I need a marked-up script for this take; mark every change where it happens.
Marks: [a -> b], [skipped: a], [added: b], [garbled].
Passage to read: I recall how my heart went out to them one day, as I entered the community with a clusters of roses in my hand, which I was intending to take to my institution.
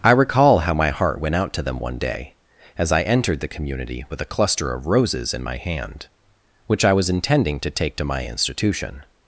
I recall how my heart went out to them one day, as I entered the community with a [clusters -> cluster] of roses in my hand, which I was intending to take to my institution.